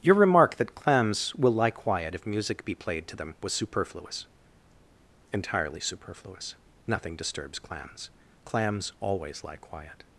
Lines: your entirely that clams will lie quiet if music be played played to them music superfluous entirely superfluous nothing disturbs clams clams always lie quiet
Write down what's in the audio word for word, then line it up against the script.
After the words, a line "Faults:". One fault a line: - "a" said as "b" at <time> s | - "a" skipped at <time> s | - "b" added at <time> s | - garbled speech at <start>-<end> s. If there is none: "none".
your remark that clams will lie quiet if music be played to them was superfluous entirely superfluous nothing disturbs clams clams always lie quiet
Faults:
- "entirely" said as "remark" at 0.1 s
- "played" skipped at 3.1 s
- "music" said as "was" at 3.4 s